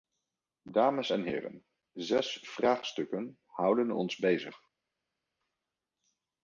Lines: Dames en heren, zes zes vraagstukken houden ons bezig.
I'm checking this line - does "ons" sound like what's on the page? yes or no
yes